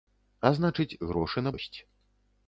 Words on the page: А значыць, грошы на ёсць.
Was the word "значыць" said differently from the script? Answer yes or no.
no